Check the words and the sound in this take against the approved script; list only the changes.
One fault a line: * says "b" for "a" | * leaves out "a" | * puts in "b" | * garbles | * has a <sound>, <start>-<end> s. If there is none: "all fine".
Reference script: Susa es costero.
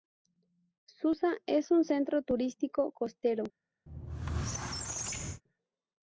* puts in "un centro turístico"
* has a squeak, 3.9-5.4 s